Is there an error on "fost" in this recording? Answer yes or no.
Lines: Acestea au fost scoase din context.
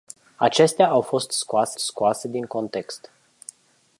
no